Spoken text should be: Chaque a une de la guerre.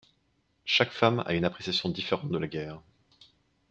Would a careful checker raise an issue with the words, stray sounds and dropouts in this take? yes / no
yes